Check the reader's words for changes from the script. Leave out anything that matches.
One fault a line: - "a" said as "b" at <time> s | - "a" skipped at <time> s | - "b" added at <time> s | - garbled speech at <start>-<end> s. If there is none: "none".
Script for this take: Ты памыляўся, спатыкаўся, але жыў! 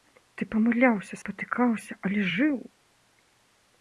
none